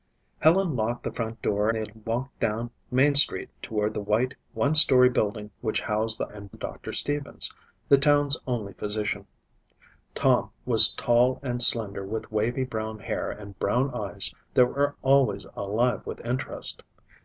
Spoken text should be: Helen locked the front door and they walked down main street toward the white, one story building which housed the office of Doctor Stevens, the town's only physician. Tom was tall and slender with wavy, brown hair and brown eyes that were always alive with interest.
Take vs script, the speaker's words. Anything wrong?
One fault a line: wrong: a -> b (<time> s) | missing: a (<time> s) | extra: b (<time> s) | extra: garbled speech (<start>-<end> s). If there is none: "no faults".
missing: and (1.7 s)
wrong: office -> and (6.3 s)